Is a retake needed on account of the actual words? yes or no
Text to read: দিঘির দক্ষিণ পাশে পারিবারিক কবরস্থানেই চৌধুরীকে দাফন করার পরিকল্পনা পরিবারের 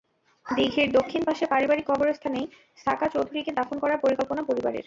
yes